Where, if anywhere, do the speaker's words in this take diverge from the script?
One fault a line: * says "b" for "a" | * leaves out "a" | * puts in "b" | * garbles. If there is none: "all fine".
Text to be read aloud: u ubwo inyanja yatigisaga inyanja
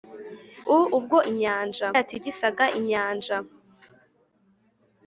all fine